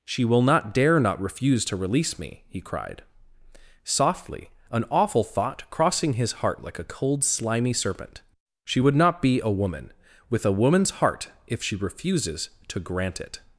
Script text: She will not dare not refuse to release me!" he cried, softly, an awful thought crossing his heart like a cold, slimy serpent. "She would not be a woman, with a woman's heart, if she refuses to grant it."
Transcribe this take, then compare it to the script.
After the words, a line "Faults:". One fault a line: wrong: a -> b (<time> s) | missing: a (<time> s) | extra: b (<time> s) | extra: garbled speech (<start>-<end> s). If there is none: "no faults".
She will not dare not refuse to release me!" he cried, softly, an awful thought crossing his heart like a cold, slimy serpent. "She would not be a woman, with a woman's heart, if she refuses to grant it."
Faults:
no faults